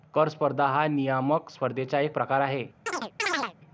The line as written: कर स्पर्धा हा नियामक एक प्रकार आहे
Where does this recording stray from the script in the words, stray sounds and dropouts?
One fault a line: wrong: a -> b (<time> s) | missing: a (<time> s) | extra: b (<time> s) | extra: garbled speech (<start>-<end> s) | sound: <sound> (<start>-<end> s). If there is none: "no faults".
extra: स्पर्धेचा (1.5 s)
sound: chirp (2.9-3.5 s)